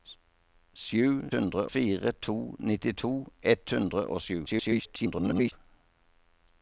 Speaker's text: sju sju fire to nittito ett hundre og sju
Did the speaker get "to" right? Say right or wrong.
right